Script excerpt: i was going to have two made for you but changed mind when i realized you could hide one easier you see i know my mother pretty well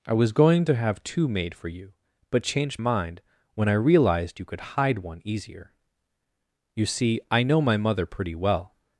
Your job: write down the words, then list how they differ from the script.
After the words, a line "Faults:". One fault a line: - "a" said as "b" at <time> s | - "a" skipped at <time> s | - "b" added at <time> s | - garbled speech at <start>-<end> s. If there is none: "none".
i was going to have two made for you but changed mind when i realized you could hide one easier you see i know my mother pretty well
Faults:
none